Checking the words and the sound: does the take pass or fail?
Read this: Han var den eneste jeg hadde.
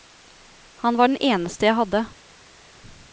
pass